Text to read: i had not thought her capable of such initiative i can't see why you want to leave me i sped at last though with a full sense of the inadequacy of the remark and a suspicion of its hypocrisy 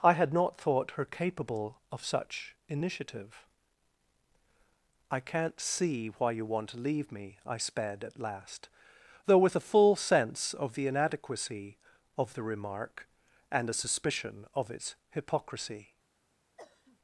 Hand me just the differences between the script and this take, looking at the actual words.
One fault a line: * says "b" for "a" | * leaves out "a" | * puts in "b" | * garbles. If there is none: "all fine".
all fine